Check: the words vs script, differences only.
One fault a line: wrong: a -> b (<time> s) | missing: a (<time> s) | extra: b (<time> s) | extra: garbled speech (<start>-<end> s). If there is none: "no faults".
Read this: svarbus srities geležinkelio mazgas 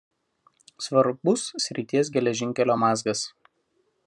no faults